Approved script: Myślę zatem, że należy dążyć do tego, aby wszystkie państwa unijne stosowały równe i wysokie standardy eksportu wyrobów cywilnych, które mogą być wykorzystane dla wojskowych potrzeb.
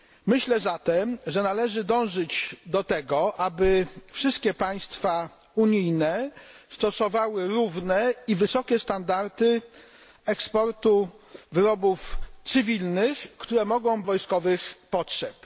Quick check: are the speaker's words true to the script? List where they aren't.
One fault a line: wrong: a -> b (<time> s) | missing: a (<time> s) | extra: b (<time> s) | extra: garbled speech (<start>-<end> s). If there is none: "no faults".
missing: być wykorzystane dla (14.0 s)